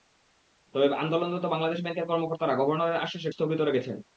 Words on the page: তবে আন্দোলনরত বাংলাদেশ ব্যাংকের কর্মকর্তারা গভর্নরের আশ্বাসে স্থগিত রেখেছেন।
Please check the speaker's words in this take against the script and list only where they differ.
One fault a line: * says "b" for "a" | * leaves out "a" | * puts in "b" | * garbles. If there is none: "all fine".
all fine